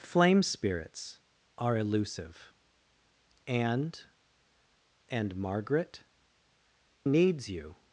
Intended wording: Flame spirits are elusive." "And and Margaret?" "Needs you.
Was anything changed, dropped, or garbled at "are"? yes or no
no